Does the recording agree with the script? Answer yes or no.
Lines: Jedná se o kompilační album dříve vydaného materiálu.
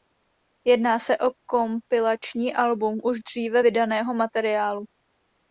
no